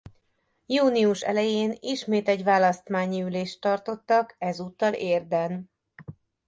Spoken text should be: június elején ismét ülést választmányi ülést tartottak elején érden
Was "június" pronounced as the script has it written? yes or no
yes